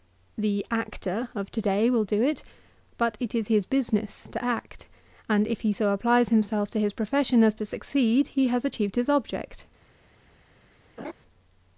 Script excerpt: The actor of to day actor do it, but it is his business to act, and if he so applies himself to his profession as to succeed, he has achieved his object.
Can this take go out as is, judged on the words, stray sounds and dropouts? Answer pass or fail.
fail